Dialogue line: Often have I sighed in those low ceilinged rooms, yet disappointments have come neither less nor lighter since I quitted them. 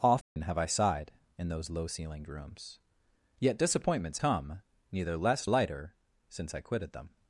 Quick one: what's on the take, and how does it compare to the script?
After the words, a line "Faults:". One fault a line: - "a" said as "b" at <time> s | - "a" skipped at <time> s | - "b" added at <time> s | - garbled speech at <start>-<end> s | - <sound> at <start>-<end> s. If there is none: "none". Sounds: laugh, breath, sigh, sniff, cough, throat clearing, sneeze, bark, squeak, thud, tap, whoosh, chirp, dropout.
Often have I sighed in those low ceilinged rooms, yet disappointments come neither less lighter since I quitted them.
Faults:
- dropout at 0.2-0.4 s
- "have" skipped at 4.2 s
- "nor" skipped at 5.5 s